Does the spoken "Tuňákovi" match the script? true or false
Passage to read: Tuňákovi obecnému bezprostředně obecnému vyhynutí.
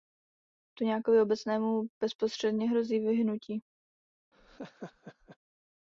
true